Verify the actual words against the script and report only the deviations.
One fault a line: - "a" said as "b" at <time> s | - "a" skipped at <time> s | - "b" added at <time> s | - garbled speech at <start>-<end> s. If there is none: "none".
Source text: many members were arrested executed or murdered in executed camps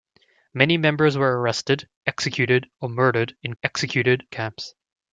none